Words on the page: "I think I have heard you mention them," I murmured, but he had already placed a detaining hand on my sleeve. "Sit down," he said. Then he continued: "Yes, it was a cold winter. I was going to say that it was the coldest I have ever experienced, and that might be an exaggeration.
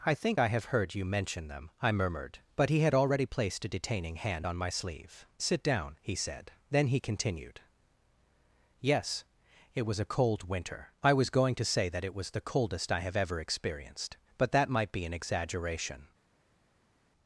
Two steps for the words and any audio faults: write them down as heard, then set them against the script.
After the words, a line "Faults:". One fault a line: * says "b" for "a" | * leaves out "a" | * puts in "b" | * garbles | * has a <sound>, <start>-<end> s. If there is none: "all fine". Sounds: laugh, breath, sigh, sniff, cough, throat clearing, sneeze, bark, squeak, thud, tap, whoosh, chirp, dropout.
"I think I have heard you mention them," I murmured, but he had already placed a detaining hand on my sleeve. "Sit down," he said. Then he continued: "Yes, it was a cold winter. I was going to say that it was the coldest I have ever experienced, but that might be an exaggeration.
Faults:
* says "but" for "and"